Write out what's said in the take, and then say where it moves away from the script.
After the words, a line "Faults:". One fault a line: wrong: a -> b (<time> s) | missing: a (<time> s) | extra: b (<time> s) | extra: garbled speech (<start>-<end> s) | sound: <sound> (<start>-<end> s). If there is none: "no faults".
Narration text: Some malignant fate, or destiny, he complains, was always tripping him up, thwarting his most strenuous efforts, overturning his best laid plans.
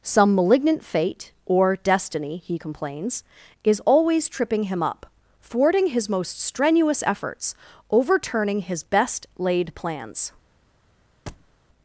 Some malignant fate, or destiny, he complains, is always tripping him up, thwarting his most strenuous efforts, overturning his best laid plans.
Faults:
wrong: was -> is (3.6 s)
sound: thud (11.3-11.5 s)